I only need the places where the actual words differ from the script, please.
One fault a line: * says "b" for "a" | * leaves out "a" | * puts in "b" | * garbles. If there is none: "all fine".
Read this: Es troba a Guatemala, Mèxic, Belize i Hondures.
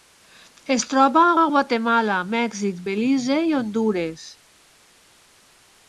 * puts in "a"